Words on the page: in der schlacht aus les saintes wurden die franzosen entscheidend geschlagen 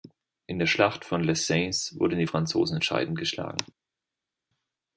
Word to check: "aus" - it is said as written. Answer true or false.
false